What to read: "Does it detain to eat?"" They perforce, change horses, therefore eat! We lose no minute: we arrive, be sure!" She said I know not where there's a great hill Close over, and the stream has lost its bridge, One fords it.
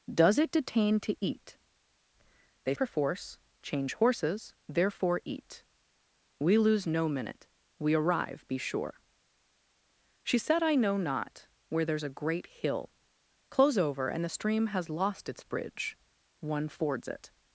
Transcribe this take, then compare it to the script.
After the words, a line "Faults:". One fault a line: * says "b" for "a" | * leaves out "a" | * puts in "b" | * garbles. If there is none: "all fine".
"Does it detain to eat?"" They perforce, change horses, therefore eat! We lose no minute: we arrive, be sure!" She said I know not where there's a great hill Close over, and the stream has lost its bridge, One fords it.
Faults:
all fine